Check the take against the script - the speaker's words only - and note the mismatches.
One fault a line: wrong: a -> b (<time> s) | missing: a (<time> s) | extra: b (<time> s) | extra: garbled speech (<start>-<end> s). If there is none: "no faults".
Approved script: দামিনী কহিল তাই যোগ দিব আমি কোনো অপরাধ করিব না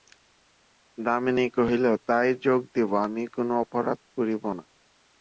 no faults